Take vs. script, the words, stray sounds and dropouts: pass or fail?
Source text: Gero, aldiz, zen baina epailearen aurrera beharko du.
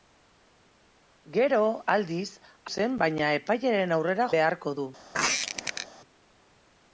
fail